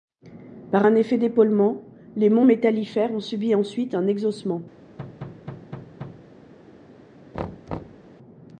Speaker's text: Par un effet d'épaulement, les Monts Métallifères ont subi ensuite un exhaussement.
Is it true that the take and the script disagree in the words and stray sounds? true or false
true